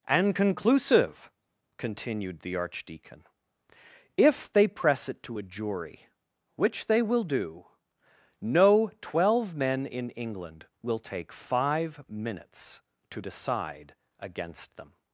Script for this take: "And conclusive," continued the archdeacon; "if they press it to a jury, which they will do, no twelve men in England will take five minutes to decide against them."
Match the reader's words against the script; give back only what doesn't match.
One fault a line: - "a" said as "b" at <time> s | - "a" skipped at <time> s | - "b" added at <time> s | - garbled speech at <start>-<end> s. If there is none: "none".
none